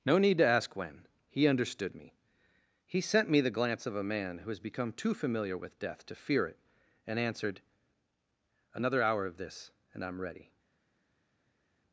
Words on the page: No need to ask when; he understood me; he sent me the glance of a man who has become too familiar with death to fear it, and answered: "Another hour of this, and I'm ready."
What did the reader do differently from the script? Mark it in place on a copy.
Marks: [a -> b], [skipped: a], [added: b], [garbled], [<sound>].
No need to ask when; he understood me; he sent me the glance of a man who has become too familiar with death to fear it, and answered: "Another hour of this, and I'm ready."